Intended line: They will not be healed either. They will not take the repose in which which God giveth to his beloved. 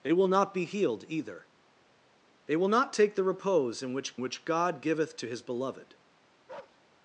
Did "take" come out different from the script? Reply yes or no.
no